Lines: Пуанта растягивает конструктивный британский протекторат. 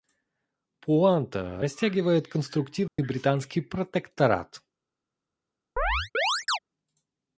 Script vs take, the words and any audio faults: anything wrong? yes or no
yes